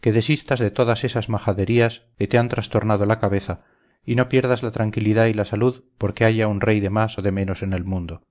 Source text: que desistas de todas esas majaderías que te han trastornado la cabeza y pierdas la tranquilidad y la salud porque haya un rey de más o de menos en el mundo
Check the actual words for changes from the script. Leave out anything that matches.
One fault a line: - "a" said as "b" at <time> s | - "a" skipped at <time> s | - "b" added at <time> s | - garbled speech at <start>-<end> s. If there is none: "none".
- "no" added at 4.2 s